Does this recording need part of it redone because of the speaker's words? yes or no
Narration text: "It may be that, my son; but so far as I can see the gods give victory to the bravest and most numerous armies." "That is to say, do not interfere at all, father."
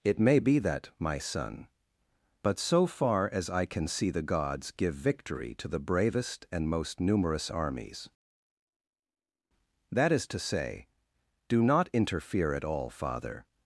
no